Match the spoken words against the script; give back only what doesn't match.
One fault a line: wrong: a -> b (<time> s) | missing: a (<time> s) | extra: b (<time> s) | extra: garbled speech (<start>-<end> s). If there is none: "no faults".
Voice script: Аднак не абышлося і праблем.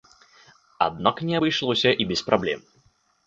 extra: без (2.1 s)